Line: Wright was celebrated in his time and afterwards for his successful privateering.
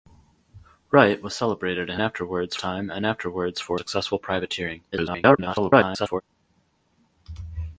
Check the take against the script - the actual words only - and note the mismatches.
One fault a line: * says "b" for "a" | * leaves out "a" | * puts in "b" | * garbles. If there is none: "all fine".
* says "afterwards" for "his"
* leaves out "his"
* garbles